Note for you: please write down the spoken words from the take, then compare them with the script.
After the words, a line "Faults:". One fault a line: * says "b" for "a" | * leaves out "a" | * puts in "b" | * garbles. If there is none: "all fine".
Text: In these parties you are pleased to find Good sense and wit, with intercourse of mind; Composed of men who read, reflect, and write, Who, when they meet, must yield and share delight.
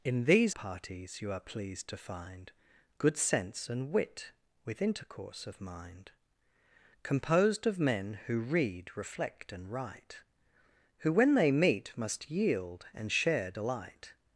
In these parties you are pleased to find Good sense and wit, with intercourse of mind; Composed of men who read, reflect, and write, Who, when they meet, must yield and share delight.
Faults:
all fine